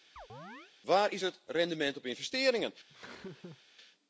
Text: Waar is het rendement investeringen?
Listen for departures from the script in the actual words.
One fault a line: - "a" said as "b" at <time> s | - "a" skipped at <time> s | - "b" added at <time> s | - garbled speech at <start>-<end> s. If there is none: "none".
- "op" added at 2.0 s